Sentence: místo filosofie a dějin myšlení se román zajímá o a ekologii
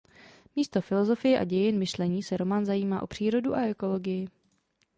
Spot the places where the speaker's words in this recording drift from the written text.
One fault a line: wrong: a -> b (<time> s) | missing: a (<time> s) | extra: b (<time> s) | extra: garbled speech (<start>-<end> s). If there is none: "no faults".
extra: přírodu (3.1 s)